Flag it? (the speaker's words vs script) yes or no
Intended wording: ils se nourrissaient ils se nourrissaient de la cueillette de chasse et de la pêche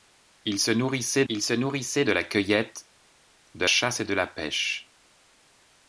no